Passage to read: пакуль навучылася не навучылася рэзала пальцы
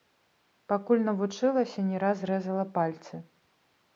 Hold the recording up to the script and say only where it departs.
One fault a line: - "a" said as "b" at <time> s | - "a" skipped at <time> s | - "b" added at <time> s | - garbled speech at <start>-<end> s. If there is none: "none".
- "навучылася" said as "раз" at 2.0 s